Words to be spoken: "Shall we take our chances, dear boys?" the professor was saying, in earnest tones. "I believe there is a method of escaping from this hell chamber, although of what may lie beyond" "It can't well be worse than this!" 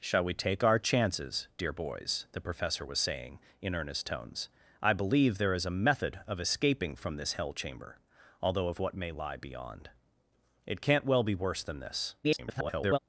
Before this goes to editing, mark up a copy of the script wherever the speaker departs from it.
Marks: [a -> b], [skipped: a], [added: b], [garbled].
"Shall we take our chances, dear boys?" the professor was saying, in earnest tones. "I believe there is a method of escaping from this hell chamber, although of what may lie beyond" "It can't well be worse than this!" [garbled]